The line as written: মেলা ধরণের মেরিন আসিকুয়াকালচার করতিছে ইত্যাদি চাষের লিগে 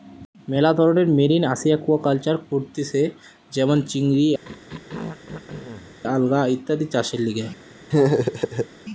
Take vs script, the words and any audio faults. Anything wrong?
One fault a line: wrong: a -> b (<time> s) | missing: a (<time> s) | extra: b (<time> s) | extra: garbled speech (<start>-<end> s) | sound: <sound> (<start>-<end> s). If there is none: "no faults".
extra: যেমন চিংড়ি আলগা (3.5 s)
sound: throat clearing (4.4-6.0 s)
sound: laugh (7.9-8.7 s)